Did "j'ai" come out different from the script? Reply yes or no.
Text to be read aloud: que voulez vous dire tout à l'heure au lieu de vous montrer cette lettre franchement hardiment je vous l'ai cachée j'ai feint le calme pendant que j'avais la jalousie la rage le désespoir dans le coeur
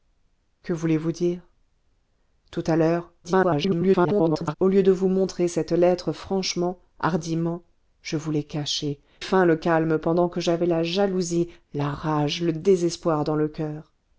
yes